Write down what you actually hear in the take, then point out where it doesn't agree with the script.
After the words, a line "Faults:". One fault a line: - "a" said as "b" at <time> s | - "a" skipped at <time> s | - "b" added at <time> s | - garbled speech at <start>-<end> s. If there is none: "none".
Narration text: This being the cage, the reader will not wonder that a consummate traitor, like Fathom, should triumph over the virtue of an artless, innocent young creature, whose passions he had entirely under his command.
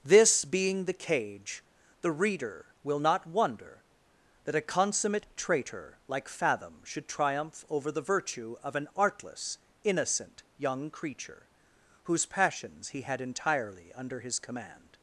This being the cage, the reader will not wonder that a consummate traitor, like Fathom, should triumph over the virtue of an artless, innocent young creature, whose passions he had entirely under his command.
Faults:
none